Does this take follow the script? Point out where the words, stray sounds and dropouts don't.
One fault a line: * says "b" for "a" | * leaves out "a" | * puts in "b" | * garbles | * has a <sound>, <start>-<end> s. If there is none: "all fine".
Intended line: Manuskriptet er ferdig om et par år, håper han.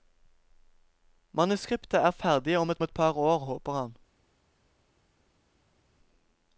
* puts in "et"